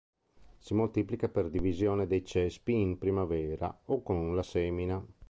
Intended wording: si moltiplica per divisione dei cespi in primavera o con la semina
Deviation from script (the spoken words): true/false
false